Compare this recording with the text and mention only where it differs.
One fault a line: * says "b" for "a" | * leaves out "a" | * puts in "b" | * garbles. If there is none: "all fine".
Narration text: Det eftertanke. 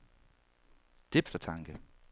all fine